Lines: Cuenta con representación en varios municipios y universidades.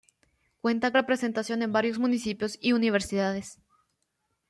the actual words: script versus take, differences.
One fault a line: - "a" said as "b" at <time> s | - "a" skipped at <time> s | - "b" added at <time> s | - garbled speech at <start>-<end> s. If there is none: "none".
- "con" skipped at 0.9 s